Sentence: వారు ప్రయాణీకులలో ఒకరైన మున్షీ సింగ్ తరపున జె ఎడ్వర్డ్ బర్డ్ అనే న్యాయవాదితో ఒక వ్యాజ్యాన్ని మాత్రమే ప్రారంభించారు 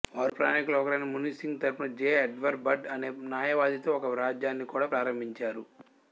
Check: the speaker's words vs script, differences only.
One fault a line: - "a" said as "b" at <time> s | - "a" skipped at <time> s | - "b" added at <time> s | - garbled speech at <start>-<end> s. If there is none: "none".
- "మాత్రమే" said as "కూడా" at 4.7 s